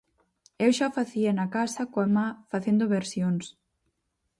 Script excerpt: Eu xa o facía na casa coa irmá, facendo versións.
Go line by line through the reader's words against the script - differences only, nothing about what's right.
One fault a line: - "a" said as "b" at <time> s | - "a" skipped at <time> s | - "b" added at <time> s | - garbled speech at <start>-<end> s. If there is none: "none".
none